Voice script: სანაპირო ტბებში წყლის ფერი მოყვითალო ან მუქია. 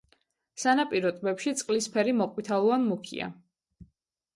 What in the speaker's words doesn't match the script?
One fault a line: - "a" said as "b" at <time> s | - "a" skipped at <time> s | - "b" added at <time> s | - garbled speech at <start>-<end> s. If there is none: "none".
none